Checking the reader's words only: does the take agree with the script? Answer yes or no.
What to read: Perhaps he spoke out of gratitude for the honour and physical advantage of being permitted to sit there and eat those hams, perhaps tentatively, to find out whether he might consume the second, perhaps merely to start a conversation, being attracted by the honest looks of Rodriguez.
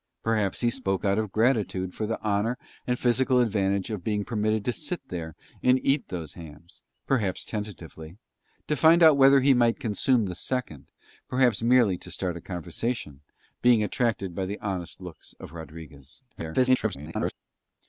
no